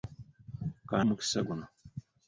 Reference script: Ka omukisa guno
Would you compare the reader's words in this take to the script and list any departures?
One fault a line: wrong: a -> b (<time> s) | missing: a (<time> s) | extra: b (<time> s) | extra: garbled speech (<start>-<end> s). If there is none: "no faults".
no faults